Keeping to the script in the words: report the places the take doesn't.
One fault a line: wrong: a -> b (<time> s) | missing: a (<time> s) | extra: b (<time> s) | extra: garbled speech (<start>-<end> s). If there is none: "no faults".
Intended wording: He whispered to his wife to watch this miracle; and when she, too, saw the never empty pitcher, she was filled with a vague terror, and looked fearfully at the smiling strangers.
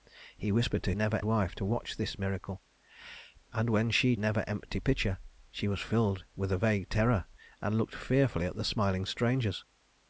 wrong: his -> never (0.9 s)
missing: too saw the (4.1 s)